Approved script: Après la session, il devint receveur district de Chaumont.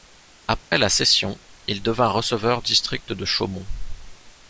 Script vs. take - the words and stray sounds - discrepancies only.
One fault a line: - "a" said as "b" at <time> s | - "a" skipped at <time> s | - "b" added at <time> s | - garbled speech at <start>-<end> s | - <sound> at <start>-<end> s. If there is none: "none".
- dropout at 0.6-0.7 s